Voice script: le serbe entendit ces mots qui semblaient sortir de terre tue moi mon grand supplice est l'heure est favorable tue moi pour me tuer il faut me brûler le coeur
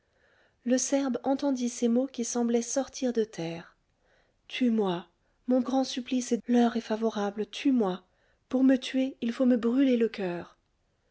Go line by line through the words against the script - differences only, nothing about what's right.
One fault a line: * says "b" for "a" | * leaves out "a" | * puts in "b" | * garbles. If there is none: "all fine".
all fine